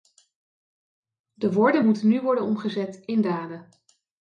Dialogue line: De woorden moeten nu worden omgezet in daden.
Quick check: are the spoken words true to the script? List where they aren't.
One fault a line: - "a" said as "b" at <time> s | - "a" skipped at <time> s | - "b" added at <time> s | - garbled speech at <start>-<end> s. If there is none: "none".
none